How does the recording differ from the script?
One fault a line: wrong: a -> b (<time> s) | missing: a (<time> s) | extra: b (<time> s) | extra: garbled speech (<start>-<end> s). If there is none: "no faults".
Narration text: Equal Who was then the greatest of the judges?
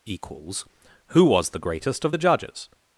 wrong: Equal -> Equals (0.1 s)
missing: then (1.5 s)